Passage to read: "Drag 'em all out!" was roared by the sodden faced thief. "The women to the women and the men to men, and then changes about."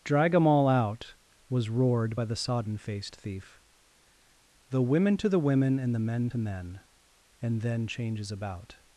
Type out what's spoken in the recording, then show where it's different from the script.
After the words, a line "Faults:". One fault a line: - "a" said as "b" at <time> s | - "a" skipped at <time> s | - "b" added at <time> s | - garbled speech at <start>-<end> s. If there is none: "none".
"Drag 'em all out!" was roared by the sodden faced thief. "The women to the women and the men to men, and then changes about."
Faults:
none